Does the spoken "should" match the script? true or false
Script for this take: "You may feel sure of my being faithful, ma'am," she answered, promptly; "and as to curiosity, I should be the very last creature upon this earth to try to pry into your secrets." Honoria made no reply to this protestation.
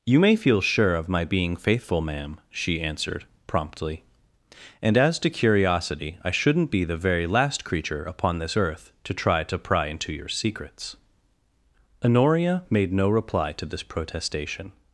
false